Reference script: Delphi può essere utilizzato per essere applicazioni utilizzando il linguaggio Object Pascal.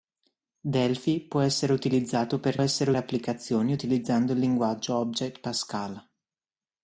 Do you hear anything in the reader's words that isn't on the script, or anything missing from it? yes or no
no